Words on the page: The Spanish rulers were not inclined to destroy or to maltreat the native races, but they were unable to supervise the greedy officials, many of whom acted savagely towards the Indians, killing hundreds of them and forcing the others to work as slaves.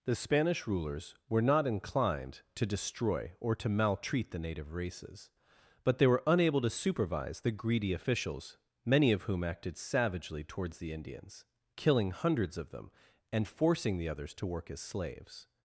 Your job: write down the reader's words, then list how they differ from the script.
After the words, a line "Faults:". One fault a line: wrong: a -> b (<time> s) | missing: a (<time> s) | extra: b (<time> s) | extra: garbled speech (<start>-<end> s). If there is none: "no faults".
The Spanish rulers were not inclined to destroy or to maltreat the native races, but they were unable to supervise the greedy officials, many of whom acted savagely towards the Indians, killing hundreds of them and forcing the others to work as slaves.
Faults:
no faults